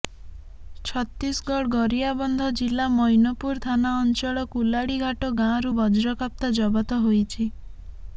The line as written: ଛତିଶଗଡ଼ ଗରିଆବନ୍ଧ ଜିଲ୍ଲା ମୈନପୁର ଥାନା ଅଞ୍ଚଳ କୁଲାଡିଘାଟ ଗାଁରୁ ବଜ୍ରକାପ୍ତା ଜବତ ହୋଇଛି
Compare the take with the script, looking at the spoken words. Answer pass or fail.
pass